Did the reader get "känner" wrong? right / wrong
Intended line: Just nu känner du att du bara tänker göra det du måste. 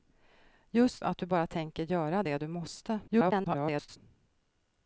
wrong